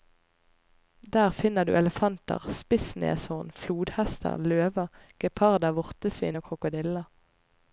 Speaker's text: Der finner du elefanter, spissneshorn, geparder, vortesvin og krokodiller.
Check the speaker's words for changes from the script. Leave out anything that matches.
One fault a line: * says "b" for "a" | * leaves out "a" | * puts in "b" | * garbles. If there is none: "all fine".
* puts in "flodhester løver"